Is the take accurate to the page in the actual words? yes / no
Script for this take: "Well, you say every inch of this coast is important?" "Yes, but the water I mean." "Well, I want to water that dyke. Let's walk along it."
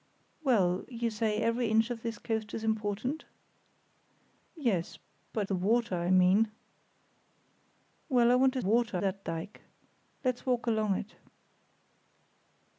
yes